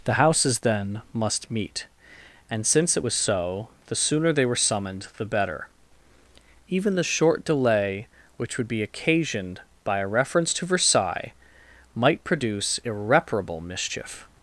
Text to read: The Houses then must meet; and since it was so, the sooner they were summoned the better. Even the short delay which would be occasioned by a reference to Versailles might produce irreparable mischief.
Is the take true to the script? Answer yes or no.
yes